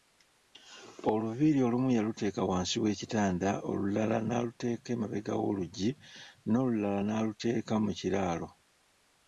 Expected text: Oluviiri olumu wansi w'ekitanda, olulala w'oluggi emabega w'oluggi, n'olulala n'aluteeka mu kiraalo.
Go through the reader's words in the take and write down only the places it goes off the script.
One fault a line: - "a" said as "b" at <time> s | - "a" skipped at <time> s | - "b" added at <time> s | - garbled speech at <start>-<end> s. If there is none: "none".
- "yaluteeka" added at 2.0 s
- "w'oluggi" said as "n'aluteeka" at 4.3 s